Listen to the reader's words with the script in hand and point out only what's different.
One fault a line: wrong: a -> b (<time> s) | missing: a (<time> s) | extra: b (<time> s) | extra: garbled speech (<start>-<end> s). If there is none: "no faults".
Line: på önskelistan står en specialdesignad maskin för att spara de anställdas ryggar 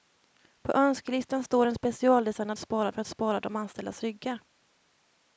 wrong: maskin -> spara (2.6 s)